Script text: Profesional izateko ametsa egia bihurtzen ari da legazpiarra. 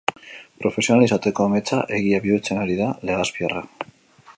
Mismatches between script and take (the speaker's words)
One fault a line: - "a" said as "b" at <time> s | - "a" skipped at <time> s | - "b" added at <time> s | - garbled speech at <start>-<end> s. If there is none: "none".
none